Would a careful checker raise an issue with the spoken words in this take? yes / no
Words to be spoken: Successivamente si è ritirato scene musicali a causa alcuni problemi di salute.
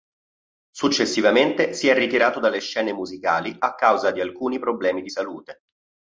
yes